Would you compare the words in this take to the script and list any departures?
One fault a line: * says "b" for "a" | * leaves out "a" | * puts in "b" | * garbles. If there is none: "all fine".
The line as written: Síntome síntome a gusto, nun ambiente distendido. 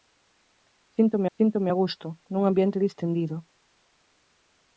all fine